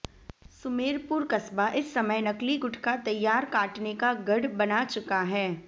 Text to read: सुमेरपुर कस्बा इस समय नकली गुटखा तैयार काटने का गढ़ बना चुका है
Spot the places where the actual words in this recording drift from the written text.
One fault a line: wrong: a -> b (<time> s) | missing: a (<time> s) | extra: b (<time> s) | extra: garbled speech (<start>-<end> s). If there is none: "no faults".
no faults